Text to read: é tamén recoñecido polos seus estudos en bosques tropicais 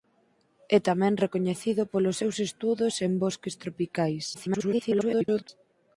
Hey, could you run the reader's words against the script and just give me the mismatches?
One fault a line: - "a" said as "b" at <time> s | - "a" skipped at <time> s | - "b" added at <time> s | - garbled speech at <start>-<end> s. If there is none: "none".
- garbled speech at 4.3-5.5 s